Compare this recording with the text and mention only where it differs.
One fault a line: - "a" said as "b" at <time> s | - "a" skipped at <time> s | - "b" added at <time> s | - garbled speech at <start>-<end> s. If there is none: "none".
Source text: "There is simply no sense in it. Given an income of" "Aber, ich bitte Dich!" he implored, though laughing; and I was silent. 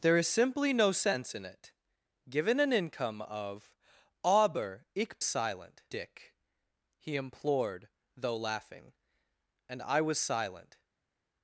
- "bitte" said as "silent" at 5.2 s